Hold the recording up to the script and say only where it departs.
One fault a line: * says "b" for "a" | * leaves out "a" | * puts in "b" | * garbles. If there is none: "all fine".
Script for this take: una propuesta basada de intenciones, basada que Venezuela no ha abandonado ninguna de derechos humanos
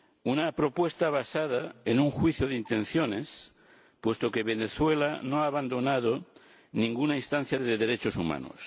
* puts in "en un juicio"
* says "puesto" for "basada"
* puts in "instancia"